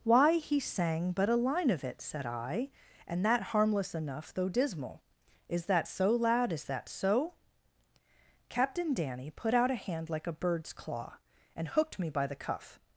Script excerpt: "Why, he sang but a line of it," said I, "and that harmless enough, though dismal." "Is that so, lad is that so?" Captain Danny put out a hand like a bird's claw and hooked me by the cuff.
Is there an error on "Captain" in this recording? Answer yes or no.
no